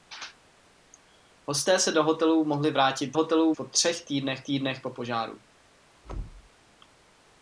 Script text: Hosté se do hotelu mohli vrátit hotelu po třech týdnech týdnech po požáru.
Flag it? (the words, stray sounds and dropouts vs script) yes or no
yes